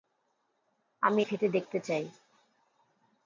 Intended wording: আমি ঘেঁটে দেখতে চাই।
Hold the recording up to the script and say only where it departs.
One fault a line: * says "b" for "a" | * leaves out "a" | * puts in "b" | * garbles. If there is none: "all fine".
all fine